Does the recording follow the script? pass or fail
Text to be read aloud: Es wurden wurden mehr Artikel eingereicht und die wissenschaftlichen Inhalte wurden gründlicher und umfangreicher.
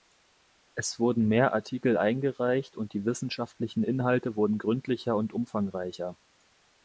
fail